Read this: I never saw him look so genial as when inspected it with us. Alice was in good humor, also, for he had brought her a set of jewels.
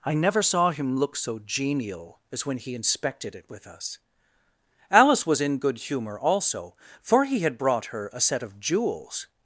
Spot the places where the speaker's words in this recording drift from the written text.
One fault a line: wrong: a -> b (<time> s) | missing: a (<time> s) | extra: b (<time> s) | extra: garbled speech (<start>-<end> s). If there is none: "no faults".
extra: he (2.6 s)